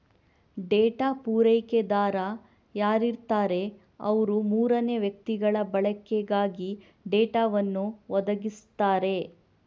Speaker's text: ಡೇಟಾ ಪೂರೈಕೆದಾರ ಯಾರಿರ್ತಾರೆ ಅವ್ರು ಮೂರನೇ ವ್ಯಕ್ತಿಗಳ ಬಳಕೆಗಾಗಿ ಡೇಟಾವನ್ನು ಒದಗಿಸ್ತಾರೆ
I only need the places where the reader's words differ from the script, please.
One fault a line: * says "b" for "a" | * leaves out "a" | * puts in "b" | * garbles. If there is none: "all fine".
all fine